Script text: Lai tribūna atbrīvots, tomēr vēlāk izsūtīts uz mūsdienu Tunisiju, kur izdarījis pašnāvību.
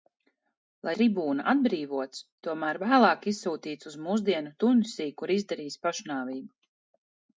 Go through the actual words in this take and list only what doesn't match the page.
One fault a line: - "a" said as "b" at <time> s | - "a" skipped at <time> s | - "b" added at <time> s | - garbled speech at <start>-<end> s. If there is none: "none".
none